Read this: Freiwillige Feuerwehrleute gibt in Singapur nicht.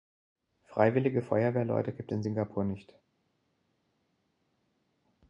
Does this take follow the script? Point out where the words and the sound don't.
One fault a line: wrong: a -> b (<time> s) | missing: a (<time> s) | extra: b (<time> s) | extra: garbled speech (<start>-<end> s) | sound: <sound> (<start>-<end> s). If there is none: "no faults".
no faults